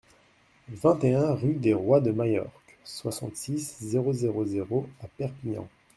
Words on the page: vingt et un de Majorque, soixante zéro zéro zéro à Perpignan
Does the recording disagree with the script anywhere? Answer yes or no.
yes